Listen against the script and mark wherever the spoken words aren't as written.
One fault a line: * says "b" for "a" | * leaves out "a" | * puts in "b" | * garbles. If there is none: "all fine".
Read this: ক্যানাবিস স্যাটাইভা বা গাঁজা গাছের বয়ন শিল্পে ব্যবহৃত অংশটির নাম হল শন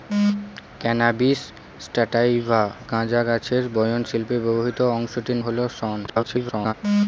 * leaves out "বা"
* leaves out "নাম"
* garbles